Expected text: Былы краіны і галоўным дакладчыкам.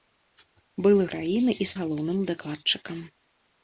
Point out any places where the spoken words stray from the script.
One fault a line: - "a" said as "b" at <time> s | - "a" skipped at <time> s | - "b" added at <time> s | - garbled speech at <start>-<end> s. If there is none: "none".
none